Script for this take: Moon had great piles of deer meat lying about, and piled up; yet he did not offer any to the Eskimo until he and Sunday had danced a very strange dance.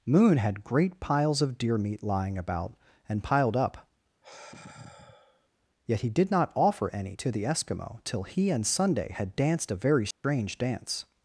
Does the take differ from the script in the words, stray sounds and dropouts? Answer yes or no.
yes